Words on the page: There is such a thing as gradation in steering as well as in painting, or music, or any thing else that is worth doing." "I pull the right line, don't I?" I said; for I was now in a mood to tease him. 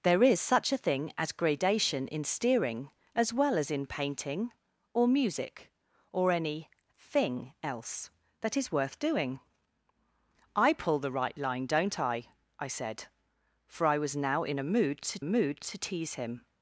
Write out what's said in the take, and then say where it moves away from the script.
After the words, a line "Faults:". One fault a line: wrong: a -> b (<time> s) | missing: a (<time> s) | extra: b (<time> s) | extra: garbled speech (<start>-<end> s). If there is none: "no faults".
There is such a thing as gradation in steering as well as in painting, or music, or any thing else that is worth doing." "I pull the right line, don't I?" I said; for I was now in a mood to mood to tease him.
Faults:
extra: mood to (15.2 s)